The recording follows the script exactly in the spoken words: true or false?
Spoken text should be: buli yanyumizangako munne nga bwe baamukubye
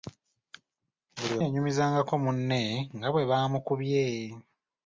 true